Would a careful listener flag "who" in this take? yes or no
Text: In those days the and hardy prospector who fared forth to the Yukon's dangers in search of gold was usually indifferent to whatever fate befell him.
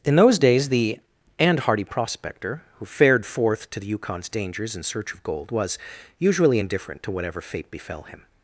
no